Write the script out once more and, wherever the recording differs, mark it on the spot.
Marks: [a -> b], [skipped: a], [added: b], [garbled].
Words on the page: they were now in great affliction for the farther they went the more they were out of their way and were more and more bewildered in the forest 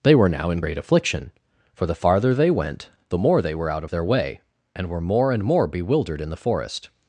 they were now in great affliction for the farther they went the more they were out of their way and were more and more bewildered in the forest